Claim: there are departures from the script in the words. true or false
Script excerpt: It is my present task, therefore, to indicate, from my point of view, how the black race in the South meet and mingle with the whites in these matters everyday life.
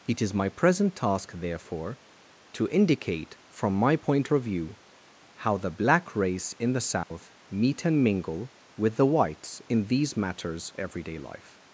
false